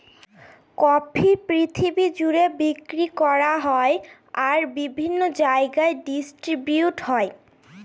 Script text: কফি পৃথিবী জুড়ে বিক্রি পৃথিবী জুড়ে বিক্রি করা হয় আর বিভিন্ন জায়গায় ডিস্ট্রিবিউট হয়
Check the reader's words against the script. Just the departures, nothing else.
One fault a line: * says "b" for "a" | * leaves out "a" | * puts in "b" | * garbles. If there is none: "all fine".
* leaves out "পৃথিবী জুড়ে বিক্রি"